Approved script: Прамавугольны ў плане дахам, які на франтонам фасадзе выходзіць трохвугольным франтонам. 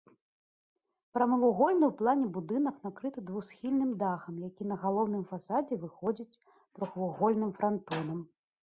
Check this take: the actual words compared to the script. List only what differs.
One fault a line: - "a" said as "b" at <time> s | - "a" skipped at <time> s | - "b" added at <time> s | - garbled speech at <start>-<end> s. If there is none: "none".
- "будынак накрыты двухсхільным" added at 2.4 s
- "франтонам" said as "галоўным" at 4.9 s